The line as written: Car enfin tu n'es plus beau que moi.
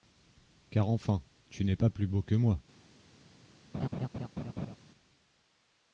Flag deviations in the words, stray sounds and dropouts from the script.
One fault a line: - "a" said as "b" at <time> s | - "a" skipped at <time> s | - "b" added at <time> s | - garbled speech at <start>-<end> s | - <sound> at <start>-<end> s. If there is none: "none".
- "pas" added at 1.7 s
- laugh at 3.7-4.8 s